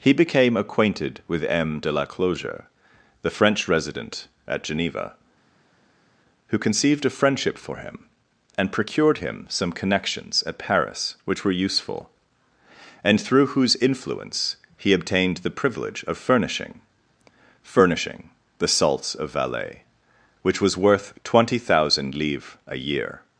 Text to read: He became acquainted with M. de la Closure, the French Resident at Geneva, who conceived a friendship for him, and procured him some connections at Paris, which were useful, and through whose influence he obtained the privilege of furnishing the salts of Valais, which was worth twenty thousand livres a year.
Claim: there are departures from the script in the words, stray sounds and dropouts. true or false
true